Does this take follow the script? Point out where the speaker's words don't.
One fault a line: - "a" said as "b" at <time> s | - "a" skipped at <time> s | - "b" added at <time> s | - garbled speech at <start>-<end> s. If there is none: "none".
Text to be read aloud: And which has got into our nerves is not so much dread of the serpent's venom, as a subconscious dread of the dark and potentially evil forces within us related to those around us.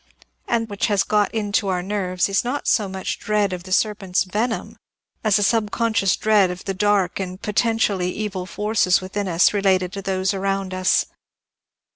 none